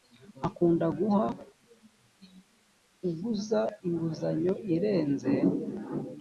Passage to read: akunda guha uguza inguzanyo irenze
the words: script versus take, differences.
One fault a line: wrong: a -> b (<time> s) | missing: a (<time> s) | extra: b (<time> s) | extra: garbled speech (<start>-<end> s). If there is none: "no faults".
no faults